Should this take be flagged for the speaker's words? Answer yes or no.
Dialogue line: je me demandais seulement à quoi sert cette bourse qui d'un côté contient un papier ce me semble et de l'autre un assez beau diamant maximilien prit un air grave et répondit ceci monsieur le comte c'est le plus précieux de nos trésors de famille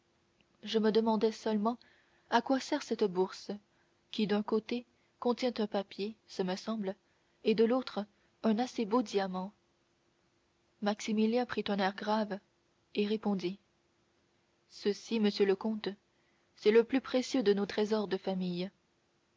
no